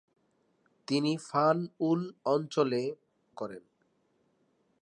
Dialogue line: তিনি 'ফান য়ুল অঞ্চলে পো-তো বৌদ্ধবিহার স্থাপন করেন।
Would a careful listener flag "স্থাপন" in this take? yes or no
yes